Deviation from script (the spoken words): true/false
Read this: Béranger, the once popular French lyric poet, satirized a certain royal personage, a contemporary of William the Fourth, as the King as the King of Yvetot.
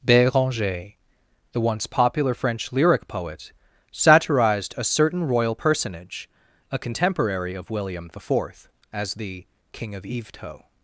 true